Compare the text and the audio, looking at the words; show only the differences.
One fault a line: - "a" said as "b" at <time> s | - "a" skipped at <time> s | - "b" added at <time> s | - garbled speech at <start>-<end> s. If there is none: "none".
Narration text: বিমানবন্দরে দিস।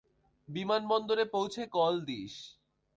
- "পৌঁছে কল" added at 1.2 s